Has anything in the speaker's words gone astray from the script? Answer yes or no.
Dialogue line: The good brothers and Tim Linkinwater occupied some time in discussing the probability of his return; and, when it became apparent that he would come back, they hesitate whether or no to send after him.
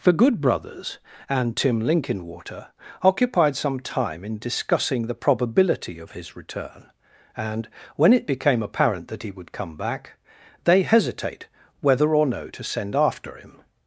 no